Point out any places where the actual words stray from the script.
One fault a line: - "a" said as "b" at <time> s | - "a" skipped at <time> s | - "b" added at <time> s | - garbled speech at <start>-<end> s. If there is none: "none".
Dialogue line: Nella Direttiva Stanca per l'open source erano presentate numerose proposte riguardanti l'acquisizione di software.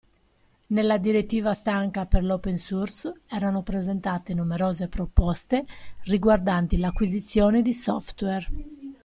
none